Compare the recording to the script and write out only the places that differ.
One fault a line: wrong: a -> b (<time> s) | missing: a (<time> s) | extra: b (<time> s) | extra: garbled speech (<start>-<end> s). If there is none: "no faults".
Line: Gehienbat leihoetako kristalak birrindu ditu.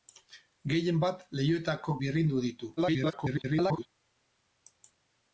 missing: kristalak (1.9 s)
extra: garbled speech (2.8-3.9 s)